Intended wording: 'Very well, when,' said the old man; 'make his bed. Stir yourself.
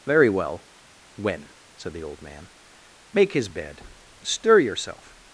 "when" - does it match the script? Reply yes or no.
yes